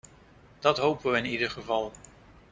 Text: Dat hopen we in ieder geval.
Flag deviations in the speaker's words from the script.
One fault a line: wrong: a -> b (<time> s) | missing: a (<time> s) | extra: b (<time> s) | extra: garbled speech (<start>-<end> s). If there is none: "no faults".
no faults